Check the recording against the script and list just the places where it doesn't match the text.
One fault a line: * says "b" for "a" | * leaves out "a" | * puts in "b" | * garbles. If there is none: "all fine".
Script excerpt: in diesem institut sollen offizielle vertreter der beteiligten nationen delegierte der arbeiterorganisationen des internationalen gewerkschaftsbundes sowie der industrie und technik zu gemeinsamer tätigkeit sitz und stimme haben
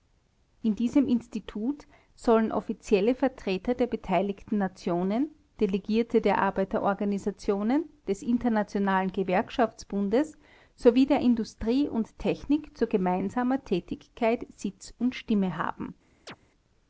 all fine